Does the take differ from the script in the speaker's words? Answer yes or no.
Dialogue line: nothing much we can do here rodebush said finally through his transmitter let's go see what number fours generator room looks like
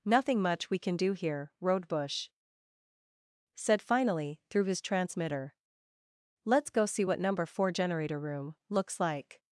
yes